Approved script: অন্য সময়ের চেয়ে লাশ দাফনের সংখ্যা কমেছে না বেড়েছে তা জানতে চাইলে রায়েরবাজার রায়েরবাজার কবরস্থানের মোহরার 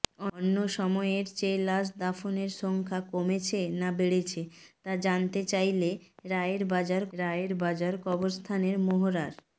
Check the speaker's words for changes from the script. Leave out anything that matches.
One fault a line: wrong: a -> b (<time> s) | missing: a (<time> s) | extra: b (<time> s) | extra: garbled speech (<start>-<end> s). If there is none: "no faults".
no faults